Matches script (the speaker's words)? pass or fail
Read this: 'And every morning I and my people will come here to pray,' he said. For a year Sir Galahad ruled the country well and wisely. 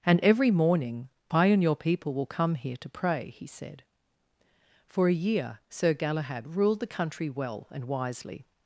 fail